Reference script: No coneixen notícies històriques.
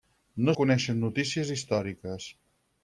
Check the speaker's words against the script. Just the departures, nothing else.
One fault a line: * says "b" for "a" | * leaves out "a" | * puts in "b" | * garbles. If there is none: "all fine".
all fine